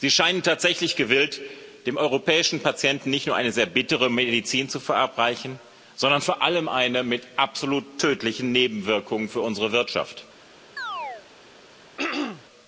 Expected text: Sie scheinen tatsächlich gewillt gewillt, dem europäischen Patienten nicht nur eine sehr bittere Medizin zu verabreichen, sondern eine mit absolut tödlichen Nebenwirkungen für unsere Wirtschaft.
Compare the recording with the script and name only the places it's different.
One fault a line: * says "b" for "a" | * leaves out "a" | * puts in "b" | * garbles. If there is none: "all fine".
* leaves out "gewillt"
* puts in "vor allem"